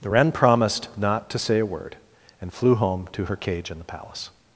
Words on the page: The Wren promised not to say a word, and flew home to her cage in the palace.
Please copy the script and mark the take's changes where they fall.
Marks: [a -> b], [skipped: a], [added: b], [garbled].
The Wren promised not to say a word, and flew home to her cage in the palace.